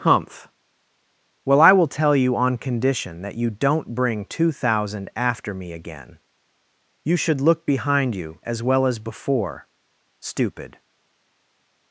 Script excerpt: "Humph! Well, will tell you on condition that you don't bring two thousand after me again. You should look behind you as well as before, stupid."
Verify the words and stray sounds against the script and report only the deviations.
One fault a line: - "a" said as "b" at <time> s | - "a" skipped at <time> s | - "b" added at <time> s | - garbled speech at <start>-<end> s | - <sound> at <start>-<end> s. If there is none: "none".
- "I" added at 1.6 s